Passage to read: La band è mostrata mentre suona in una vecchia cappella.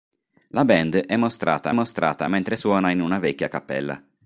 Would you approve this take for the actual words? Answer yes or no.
no